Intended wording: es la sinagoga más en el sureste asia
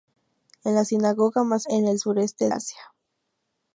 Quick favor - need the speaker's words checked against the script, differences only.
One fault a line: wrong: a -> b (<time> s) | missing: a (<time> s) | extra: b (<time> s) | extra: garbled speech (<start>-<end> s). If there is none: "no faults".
no faults